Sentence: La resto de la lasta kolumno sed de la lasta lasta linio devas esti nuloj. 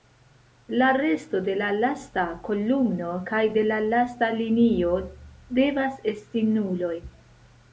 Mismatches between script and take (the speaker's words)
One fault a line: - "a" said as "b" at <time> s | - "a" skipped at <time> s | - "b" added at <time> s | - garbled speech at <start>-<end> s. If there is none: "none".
- "sed" said as "kaj" at 3.3 s
- "lasta" skipped at 4.3 s